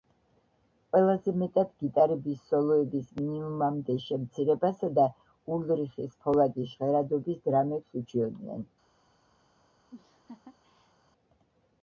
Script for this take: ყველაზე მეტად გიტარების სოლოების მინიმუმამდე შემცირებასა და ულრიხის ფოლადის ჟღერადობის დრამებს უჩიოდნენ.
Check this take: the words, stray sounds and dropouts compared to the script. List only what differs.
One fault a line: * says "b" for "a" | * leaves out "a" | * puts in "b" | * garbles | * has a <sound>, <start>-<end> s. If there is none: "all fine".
* has a laugh, 9.9-10.9 s